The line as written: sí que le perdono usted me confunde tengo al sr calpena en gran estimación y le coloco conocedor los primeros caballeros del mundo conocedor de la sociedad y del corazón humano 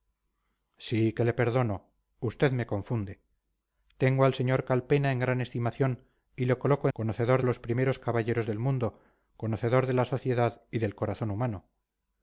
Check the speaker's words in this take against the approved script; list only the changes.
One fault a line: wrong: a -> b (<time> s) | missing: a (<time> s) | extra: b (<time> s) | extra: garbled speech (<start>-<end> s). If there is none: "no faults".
no faults